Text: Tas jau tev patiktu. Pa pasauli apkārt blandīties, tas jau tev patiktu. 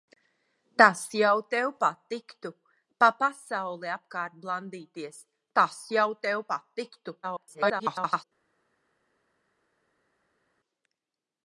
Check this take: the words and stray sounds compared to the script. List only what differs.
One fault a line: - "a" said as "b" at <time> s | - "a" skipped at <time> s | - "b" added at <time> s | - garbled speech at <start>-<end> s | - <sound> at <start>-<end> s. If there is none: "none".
- garbled speech at 7.2-8.2 s